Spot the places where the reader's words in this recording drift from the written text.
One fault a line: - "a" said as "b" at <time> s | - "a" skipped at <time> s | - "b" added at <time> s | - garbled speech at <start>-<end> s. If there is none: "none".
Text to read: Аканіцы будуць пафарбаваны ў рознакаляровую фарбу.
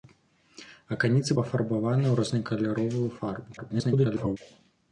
- "будуць" skipped at 1.3 s
- garbled speech at 3.6-4.4 s